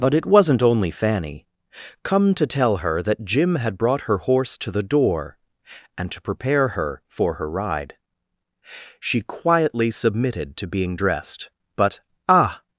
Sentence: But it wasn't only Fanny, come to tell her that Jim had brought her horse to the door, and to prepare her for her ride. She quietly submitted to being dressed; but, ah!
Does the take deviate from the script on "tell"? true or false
false